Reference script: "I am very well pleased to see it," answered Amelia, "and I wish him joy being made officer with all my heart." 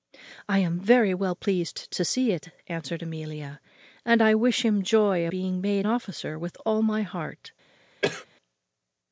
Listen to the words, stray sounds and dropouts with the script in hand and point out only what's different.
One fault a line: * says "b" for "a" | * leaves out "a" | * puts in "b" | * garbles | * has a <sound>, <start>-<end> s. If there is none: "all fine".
* has a cough, 8.0-8.3 s